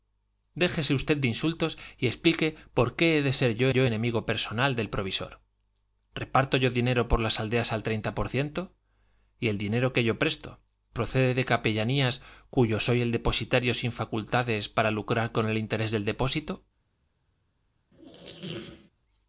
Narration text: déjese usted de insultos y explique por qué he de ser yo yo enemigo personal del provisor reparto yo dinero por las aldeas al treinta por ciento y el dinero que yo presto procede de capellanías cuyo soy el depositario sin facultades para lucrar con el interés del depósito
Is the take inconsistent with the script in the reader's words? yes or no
no